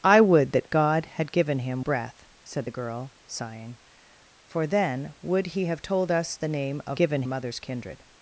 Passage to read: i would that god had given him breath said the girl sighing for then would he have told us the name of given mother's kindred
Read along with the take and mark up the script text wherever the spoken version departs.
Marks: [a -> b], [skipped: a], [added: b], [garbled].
i would that god had given him breath said the girl sighing for then would he have told us the name of given mother's kindred